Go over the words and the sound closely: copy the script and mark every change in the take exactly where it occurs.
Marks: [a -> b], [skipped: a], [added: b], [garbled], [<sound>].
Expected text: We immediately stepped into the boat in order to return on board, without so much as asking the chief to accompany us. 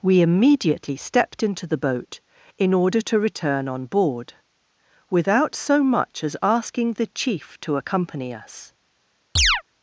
We immediately stepped into the boat in order to return on board, without so much as asking the chief to accompany us. [chirp]